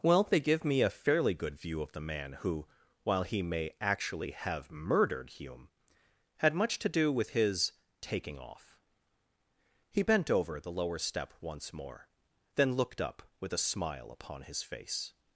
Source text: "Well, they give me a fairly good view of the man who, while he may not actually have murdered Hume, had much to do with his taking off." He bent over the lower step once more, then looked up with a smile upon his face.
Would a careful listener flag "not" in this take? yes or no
yes